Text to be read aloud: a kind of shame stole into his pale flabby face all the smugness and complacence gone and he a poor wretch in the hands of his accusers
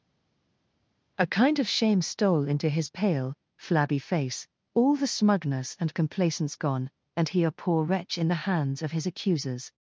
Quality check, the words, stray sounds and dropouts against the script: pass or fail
pass